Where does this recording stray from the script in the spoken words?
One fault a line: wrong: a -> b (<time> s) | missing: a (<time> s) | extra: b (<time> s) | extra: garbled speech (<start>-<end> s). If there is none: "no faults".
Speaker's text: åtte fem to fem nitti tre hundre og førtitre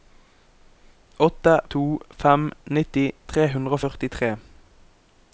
missing: fem (1.5 s)